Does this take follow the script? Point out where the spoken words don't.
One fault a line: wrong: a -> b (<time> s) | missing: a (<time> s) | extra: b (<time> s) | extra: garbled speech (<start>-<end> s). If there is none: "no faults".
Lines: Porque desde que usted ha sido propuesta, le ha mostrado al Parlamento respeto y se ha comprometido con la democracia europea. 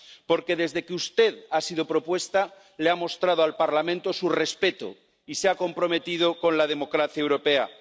extra: su (4.1 s)